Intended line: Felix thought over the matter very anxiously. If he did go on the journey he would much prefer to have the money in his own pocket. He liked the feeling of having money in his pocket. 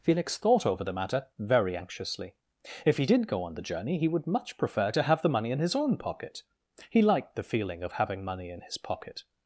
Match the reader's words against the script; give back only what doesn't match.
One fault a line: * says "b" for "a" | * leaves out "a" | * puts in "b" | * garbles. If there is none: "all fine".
all fine